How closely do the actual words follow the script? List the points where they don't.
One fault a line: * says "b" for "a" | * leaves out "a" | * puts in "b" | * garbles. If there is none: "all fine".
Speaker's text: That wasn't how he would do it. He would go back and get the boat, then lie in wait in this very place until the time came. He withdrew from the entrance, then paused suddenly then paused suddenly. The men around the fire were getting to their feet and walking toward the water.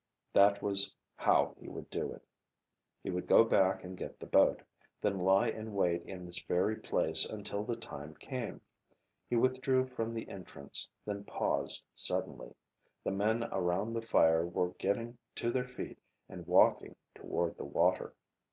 * says "was" for "wasn't"
* leaves out "then paused suddenly"